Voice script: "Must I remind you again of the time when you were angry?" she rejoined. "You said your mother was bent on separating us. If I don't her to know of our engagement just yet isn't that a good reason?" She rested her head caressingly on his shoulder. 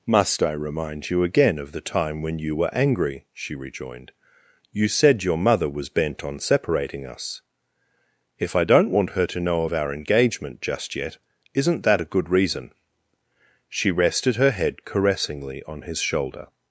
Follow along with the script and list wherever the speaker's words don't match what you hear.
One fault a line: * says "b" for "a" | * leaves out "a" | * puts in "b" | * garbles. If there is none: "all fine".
* puts in "want"